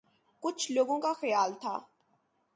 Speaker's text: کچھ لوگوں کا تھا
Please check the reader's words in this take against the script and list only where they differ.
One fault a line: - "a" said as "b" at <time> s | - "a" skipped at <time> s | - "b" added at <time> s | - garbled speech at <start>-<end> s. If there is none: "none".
- "خیال" added at 1.1 s